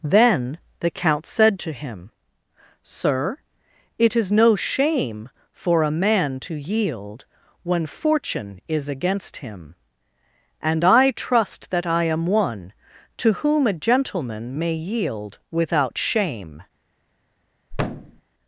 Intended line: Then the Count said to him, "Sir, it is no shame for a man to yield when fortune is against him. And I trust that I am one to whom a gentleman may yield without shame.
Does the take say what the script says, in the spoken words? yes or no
yes